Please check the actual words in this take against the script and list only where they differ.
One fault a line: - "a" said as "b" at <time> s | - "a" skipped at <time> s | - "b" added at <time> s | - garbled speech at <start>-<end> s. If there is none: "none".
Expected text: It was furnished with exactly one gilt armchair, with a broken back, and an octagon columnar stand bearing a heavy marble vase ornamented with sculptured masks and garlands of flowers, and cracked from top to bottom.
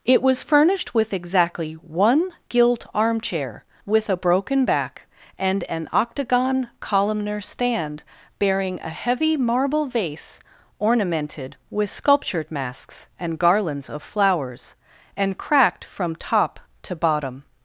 none